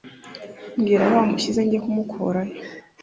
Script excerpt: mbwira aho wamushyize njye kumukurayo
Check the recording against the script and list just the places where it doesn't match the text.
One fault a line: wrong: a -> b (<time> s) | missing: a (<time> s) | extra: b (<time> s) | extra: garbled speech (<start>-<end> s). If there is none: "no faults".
no faults